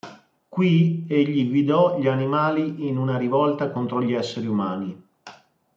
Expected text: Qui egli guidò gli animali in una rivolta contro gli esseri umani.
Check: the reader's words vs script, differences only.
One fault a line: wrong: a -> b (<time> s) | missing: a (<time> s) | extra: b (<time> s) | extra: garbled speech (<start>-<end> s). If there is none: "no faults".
no faults